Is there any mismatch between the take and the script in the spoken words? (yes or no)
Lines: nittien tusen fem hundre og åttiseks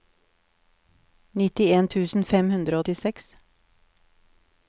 no